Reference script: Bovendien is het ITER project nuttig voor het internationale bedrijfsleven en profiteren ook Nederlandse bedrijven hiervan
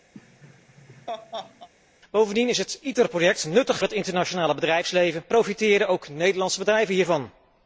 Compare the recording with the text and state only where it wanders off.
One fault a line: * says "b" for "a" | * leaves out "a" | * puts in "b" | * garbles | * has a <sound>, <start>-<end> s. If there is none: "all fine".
* has a laugh, 0.1-1.7 s
* leaves out "voor"
* leaves out "en"